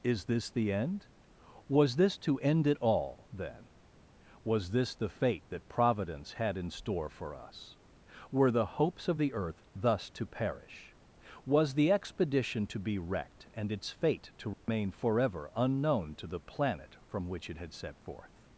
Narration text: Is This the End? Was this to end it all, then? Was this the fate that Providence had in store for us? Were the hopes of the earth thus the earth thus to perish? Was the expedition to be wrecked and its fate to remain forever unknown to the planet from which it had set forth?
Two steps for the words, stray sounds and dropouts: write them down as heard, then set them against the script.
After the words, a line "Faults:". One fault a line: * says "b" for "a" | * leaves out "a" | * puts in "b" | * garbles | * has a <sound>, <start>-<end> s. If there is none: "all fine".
Is This the End? Was this to end it all, then? Was this the fate that Providence had in store for us? Were the hopes of the earth thus to perish? Was the expedition to be wrecked and its fate to remain forever unknown to the planet from which it had set forth?
Faults:
* leaves out "the earth thus"
* has a dropout, 14.5-14.7 s